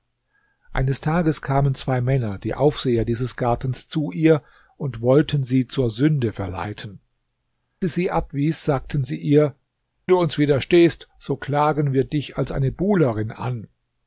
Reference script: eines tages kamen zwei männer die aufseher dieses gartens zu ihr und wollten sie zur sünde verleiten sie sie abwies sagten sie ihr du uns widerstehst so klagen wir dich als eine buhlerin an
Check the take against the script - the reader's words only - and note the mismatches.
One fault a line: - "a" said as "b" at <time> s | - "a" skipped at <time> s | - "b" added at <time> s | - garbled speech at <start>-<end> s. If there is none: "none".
none